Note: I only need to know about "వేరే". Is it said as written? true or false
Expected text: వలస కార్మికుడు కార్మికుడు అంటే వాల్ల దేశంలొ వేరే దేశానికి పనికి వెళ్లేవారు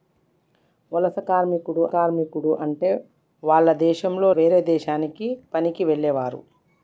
true